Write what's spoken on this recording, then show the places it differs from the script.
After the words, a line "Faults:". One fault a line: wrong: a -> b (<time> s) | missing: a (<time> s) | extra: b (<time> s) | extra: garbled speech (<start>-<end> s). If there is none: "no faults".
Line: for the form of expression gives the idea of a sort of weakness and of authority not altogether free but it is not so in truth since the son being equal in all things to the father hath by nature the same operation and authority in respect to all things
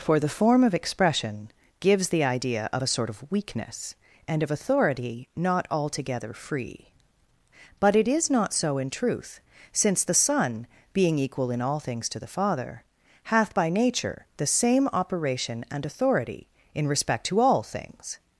for the form of expression gives the idea of a sort of weakness and of authority not altogether free but it is not so in truth since the son being equal in all things to the father hath by nature the same operation and authority in respect to all things
Faults:
no faults